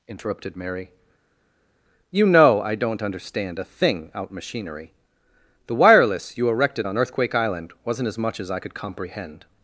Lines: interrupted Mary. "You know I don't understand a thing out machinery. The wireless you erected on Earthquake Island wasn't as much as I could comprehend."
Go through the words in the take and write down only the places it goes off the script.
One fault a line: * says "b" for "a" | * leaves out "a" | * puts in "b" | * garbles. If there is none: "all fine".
all fine